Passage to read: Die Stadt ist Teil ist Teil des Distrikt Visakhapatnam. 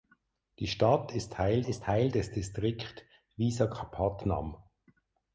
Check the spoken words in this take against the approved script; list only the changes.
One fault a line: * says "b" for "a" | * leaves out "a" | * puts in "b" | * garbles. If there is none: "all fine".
all fine